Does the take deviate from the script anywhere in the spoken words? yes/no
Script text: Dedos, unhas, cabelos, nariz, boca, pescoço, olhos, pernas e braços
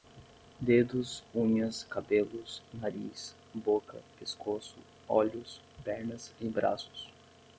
no